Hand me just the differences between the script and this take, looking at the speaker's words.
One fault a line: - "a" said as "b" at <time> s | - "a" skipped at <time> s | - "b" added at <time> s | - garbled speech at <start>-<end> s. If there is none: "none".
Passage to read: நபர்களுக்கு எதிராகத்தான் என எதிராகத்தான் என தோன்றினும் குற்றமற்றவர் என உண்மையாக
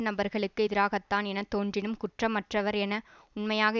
- "எதிராகத்தான் என" skipped at 1.4 s